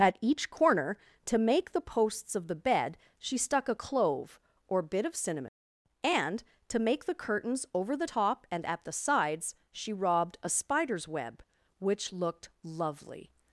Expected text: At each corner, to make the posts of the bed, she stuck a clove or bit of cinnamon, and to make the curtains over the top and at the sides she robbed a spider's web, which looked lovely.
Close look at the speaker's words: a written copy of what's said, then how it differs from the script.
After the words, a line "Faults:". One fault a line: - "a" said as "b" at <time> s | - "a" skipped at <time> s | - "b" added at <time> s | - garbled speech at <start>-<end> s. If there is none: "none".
At each corner, to make the posts of the bed, she stuck a clove or bit of cinnamon, and to make the curtains over the top and at the sides she robbed a spider's web, which looked lovely.
Faults:
none